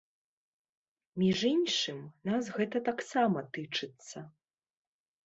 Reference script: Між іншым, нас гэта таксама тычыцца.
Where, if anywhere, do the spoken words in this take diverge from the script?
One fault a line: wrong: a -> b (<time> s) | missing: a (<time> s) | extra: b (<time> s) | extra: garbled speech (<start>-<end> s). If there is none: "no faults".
no faults